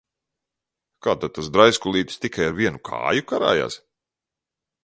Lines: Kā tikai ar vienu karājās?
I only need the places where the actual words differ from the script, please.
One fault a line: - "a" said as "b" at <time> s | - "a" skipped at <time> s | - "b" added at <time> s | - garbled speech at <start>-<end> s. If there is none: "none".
- "tad tas draiskulītis" added at 1.2 s
- "kāju" added at 2.9 s